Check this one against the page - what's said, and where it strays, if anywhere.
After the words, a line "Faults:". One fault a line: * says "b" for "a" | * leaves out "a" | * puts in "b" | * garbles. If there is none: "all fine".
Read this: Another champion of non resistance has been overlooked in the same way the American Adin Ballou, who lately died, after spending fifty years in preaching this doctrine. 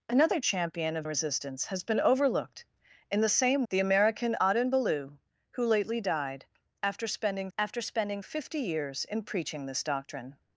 Another champion of resistance has been overlooked in the same the American Adin Ballou, who lately died, after spending after spending fifty years in preaching this doctrine.
Faults:
* leaves out "non"
* leaves out "way"
* puts in "after spending"